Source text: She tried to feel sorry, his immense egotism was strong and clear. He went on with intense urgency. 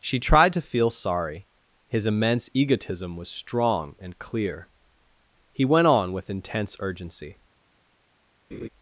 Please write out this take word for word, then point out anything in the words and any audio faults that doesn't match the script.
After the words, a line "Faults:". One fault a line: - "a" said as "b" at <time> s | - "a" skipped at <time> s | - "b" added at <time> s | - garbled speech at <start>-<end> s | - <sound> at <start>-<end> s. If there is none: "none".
She tried to feel sorry, his immense egotism was strong and clear. He went on with intense urgency.
Faults:
- laugh at 8.5-8.7 s